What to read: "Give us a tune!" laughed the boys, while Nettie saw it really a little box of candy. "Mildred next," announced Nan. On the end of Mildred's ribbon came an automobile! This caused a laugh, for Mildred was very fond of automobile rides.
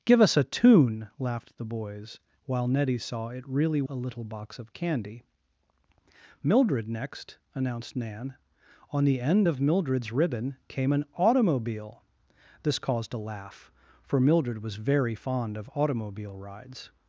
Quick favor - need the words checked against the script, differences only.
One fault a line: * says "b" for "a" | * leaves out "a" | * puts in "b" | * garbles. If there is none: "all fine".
all fine